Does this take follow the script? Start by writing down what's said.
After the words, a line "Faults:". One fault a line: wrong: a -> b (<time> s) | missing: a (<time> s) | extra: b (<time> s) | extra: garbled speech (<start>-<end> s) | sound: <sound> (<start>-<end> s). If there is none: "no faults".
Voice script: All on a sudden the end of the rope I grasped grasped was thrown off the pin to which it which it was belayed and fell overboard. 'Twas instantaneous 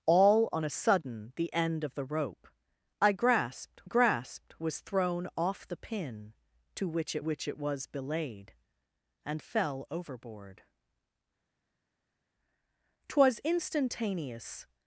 All on a sudden the end of the rope I grasped grasped was thrown off the pin to which it which it was belayed and fell overboard. 'Twas instantaneous
Faults:
no faults